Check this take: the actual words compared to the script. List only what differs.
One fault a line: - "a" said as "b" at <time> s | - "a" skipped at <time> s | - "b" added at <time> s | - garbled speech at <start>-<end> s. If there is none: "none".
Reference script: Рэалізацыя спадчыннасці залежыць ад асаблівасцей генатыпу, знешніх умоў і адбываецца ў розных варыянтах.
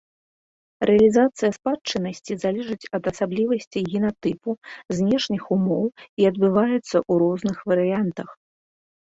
none